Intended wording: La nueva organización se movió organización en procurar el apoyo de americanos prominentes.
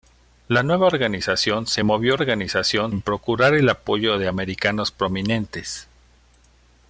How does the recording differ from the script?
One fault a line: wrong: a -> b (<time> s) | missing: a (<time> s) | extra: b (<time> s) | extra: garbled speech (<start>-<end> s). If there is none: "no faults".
no faults